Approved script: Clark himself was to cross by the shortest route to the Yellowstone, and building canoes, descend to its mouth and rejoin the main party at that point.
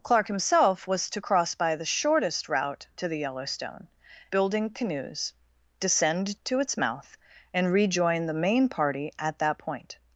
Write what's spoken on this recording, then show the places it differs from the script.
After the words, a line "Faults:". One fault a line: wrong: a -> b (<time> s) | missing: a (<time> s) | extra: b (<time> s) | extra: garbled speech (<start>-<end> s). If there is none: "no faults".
Clark himself was to cross by the shortest route to the Yellowstone, building canoes, descend to its mouth and rejoin the main party at that point.
Faults:
missing: and (3.9 s)